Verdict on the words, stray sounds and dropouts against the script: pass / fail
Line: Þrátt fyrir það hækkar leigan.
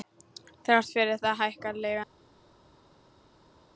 pass